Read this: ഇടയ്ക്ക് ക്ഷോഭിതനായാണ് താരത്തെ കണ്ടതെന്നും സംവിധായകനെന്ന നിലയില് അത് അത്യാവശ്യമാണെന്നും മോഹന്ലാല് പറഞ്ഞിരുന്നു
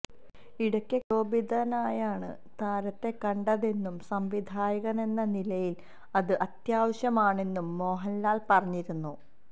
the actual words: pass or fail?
pass